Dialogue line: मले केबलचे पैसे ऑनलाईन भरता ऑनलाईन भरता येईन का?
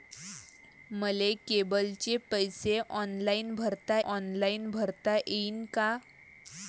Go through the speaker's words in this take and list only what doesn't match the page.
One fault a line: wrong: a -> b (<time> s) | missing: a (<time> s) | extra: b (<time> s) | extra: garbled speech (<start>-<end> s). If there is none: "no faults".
no faults